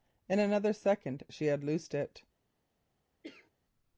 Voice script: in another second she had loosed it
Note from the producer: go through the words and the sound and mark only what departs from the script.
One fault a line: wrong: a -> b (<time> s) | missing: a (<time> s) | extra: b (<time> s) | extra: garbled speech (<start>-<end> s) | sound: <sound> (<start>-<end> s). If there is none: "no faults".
sound: cough (3.2-3.5 s)